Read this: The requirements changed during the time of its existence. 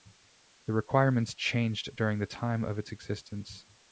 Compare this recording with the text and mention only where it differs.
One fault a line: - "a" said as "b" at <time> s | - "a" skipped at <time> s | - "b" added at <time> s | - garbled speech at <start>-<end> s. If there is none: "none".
none